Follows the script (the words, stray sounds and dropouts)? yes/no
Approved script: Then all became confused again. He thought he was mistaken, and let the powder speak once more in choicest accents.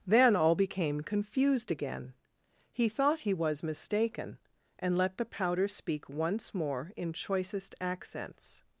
yes